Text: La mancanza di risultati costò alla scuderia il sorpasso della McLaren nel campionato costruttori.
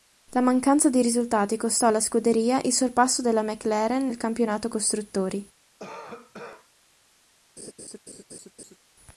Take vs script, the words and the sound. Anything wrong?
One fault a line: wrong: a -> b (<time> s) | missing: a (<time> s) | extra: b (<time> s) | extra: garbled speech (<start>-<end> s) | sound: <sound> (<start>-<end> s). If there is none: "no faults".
sound: cough (5.8-6.7 s)
sound: laugh (7.6-8.8 s)